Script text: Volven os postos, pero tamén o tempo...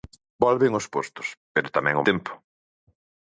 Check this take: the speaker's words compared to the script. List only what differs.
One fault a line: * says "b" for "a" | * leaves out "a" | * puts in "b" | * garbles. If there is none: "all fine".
all fine